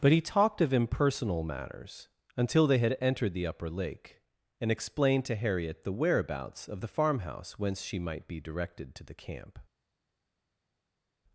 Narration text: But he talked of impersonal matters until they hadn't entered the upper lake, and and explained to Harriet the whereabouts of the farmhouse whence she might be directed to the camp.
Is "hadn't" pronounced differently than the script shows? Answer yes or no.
yes